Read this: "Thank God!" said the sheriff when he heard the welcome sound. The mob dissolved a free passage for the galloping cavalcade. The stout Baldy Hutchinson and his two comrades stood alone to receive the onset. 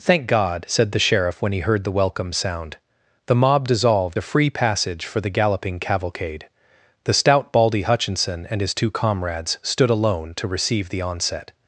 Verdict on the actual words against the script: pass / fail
pass